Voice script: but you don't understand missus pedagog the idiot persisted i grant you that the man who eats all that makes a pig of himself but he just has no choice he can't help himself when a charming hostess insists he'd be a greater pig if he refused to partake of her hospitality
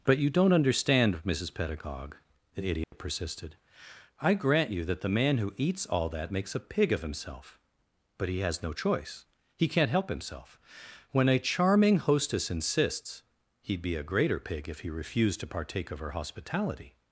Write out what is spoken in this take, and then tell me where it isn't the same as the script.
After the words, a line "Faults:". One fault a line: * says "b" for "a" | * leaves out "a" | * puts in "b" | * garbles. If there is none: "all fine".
but you don't understand missus pedagog the idiot persisted i grant you that the man who eats all that makes a pig of himself but he has no choice he can't help himself when a charming hostess insists he'd be a greater pig if he refused to partake of her hospitality
Faults:
* leaves out "just"